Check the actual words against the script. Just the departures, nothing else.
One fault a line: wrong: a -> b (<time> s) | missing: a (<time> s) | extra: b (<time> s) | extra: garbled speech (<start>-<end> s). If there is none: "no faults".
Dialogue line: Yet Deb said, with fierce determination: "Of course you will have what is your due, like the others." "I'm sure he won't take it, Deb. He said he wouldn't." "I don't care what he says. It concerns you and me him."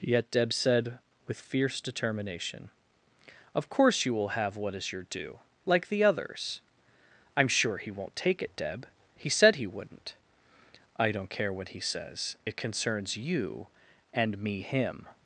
no faults